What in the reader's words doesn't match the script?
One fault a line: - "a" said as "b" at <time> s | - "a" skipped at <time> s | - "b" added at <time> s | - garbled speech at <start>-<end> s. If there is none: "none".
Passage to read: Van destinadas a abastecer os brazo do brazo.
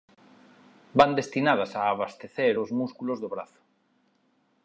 - "brazo" said as "músculos" at 2.7 s